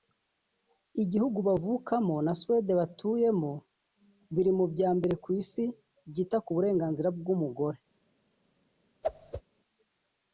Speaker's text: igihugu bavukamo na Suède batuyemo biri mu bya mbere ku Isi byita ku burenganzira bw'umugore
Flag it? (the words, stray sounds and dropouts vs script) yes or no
yes